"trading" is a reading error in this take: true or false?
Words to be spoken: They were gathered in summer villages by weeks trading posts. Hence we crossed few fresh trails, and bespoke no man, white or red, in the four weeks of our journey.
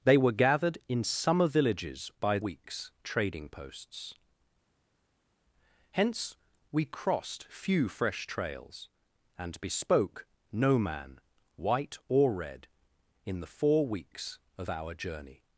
false